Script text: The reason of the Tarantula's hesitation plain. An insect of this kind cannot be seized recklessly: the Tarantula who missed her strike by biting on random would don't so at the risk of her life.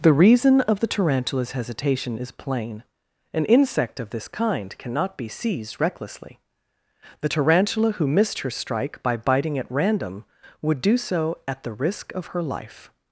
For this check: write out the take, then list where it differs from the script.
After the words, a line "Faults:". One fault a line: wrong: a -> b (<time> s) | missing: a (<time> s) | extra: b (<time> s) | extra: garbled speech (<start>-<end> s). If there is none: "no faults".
The reason of the Tarantula's hesitation is plain. An insect of this kind cannot be seized recklessly: the Tarantula who missed her strike by biting at random would do so at the risk of her life.
Faults:
extra: is (2.1 s)
wrong: on -> at (9.6 s)
wrong: don't -> do (10.8 s)